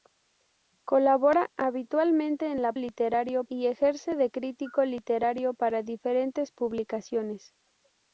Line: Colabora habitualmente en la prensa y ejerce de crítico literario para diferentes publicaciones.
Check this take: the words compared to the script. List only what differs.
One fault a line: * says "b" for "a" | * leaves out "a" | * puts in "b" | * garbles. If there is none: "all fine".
* says "literario" for "prensa"